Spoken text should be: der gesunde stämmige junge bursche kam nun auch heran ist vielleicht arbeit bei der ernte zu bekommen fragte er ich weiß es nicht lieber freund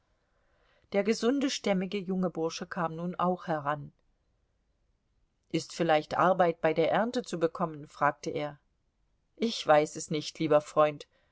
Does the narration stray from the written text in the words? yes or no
no